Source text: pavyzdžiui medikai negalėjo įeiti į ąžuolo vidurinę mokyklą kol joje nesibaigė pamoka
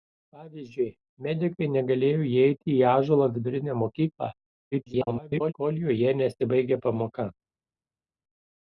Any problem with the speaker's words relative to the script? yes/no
yes